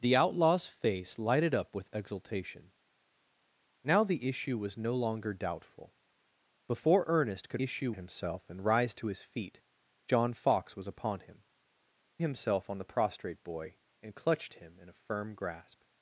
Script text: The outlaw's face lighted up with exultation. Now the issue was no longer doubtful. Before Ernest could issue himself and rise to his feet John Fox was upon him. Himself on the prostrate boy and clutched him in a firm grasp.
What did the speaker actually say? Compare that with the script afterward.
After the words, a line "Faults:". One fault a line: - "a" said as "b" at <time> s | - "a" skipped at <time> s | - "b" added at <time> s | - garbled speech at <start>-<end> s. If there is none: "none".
The outlaw's face lighted up with exultation. Now the issue was no longer doubtful. Before Ernest could issue himself and rise to his feet John Fox was upon him. Himself on the prostrate boy and clutched him in a firm grasp.
Faults:
none